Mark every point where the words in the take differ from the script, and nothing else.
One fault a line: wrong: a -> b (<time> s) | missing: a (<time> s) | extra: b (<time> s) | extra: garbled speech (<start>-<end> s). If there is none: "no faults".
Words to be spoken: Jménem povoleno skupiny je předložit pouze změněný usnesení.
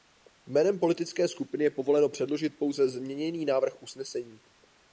wrong: povoleno -> politické (0.8 s)
extra: povoleno (1.7 s)
extra: návrh (3.5 s)